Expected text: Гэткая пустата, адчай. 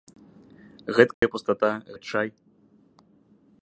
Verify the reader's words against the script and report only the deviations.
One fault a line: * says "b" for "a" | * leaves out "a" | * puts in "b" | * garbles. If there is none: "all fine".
all fine